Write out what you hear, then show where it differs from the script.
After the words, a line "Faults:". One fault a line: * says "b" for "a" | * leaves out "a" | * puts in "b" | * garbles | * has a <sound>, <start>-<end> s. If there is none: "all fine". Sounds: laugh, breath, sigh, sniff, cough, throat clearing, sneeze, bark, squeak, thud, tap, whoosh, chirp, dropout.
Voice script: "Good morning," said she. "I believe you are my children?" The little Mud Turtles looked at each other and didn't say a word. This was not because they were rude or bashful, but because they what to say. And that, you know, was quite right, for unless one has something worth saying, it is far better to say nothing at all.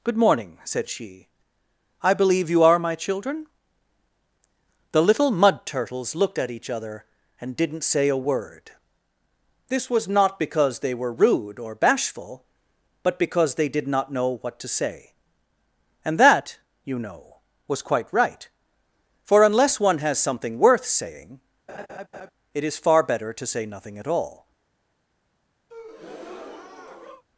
"Good morning," said she. "I believe you are my children?" The little Mud Turtles looked at each other and didn't say a word. This was not because they were rude or bashful, but because they did not know what to say. And that, you know, was quite right, for unless one has something worth saying, it is far better to say nothing at all.
Faults:
* puts in "did not know"
* has a laugh, 21.7-22.3 s
* has a breath, 25.7-27.2 s